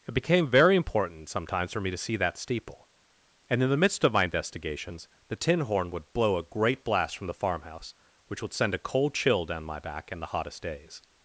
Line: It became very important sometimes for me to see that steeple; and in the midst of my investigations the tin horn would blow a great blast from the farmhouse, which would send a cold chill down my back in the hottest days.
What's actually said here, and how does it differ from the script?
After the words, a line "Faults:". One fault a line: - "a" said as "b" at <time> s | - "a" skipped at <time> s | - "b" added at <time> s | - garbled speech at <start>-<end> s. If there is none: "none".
It became very important sometimes for me to see that steeple; and in the midst of my investigations the tin horn would blow a great blast from the farmhouse, which would send a cold chill down my back in the hottest days.
Faults:
none